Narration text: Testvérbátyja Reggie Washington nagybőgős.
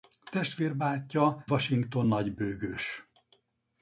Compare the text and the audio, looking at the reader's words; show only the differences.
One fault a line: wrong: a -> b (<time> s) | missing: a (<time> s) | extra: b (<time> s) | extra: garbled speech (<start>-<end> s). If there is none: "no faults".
missing: Reggie (1.4 s)